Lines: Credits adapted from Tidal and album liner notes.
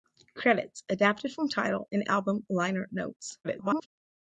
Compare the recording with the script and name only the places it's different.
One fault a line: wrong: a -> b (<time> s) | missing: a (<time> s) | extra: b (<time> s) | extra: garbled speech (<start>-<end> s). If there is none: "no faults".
extra: garbled speech (3.4-3.9 s)